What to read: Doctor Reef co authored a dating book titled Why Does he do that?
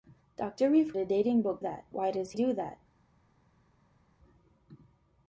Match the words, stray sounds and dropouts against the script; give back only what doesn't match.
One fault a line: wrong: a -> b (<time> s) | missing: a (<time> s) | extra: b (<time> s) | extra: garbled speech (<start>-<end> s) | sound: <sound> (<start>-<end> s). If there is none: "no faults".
missing: co authored (0.9 s)
wrong: titled -> that (1.6 s)
missing: he (2.3 s)